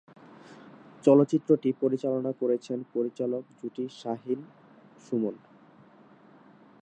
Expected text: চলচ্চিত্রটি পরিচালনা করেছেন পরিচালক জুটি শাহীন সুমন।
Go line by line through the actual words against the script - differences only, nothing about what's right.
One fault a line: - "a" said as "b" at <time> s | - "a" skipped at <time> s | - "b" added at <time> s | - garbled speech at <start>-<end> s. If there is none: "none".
none